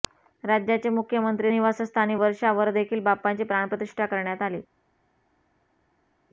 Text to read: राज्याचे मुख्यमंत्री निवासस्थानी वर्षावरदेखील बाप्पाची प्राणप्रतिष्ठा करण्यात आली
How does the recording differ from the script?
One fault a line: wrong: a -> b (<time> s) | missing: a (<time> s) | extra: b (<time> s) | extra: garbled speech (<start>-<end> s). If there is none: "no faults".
no faults